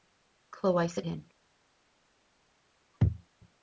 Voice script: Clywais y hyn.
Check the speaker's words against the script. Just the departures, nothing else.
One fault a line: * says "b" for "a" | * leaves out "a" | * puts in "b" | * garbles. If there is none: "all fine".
all fine